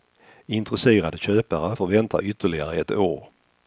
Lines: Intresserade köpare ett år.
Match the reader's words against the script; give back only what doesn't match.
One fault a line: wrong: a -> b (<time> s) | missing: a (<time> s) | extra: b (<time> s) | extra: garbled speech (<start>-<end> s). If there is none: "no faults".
extra: får vänta ytterligare (1.7 s)